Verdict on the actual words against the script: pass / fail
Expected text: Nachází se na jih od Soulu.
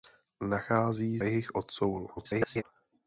fail